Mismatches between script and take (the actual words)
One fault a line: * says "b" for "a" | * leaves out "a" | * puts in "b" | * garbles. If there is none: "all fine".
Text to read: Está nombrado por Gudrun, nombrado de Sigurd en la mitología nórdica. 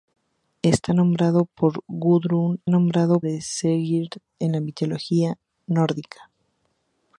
all fine